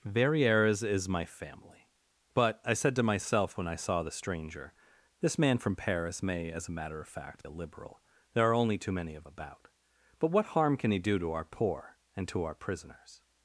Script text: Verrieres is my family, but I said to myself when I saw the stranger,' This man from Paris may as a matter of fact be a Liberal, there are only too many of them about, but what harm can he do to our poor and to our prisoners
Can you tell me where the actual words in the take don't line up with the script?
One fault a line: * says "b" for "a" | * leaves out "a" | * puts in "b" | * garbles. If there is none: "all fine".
* leaves out "be"
* leaves out "them"